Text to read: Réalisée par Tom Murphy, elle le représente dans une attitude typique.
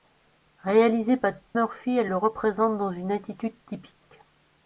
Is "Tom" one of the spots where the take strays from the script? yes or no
yes